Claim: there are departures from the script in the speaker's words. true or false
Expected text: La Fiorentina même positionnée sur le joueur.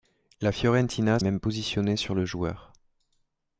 false